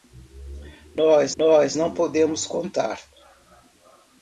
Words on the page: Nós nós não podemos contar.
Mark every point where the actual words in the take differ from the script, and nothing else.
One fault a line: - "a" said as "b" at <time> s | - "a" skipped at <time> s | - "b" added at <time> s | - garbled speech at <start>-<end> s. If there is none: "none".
none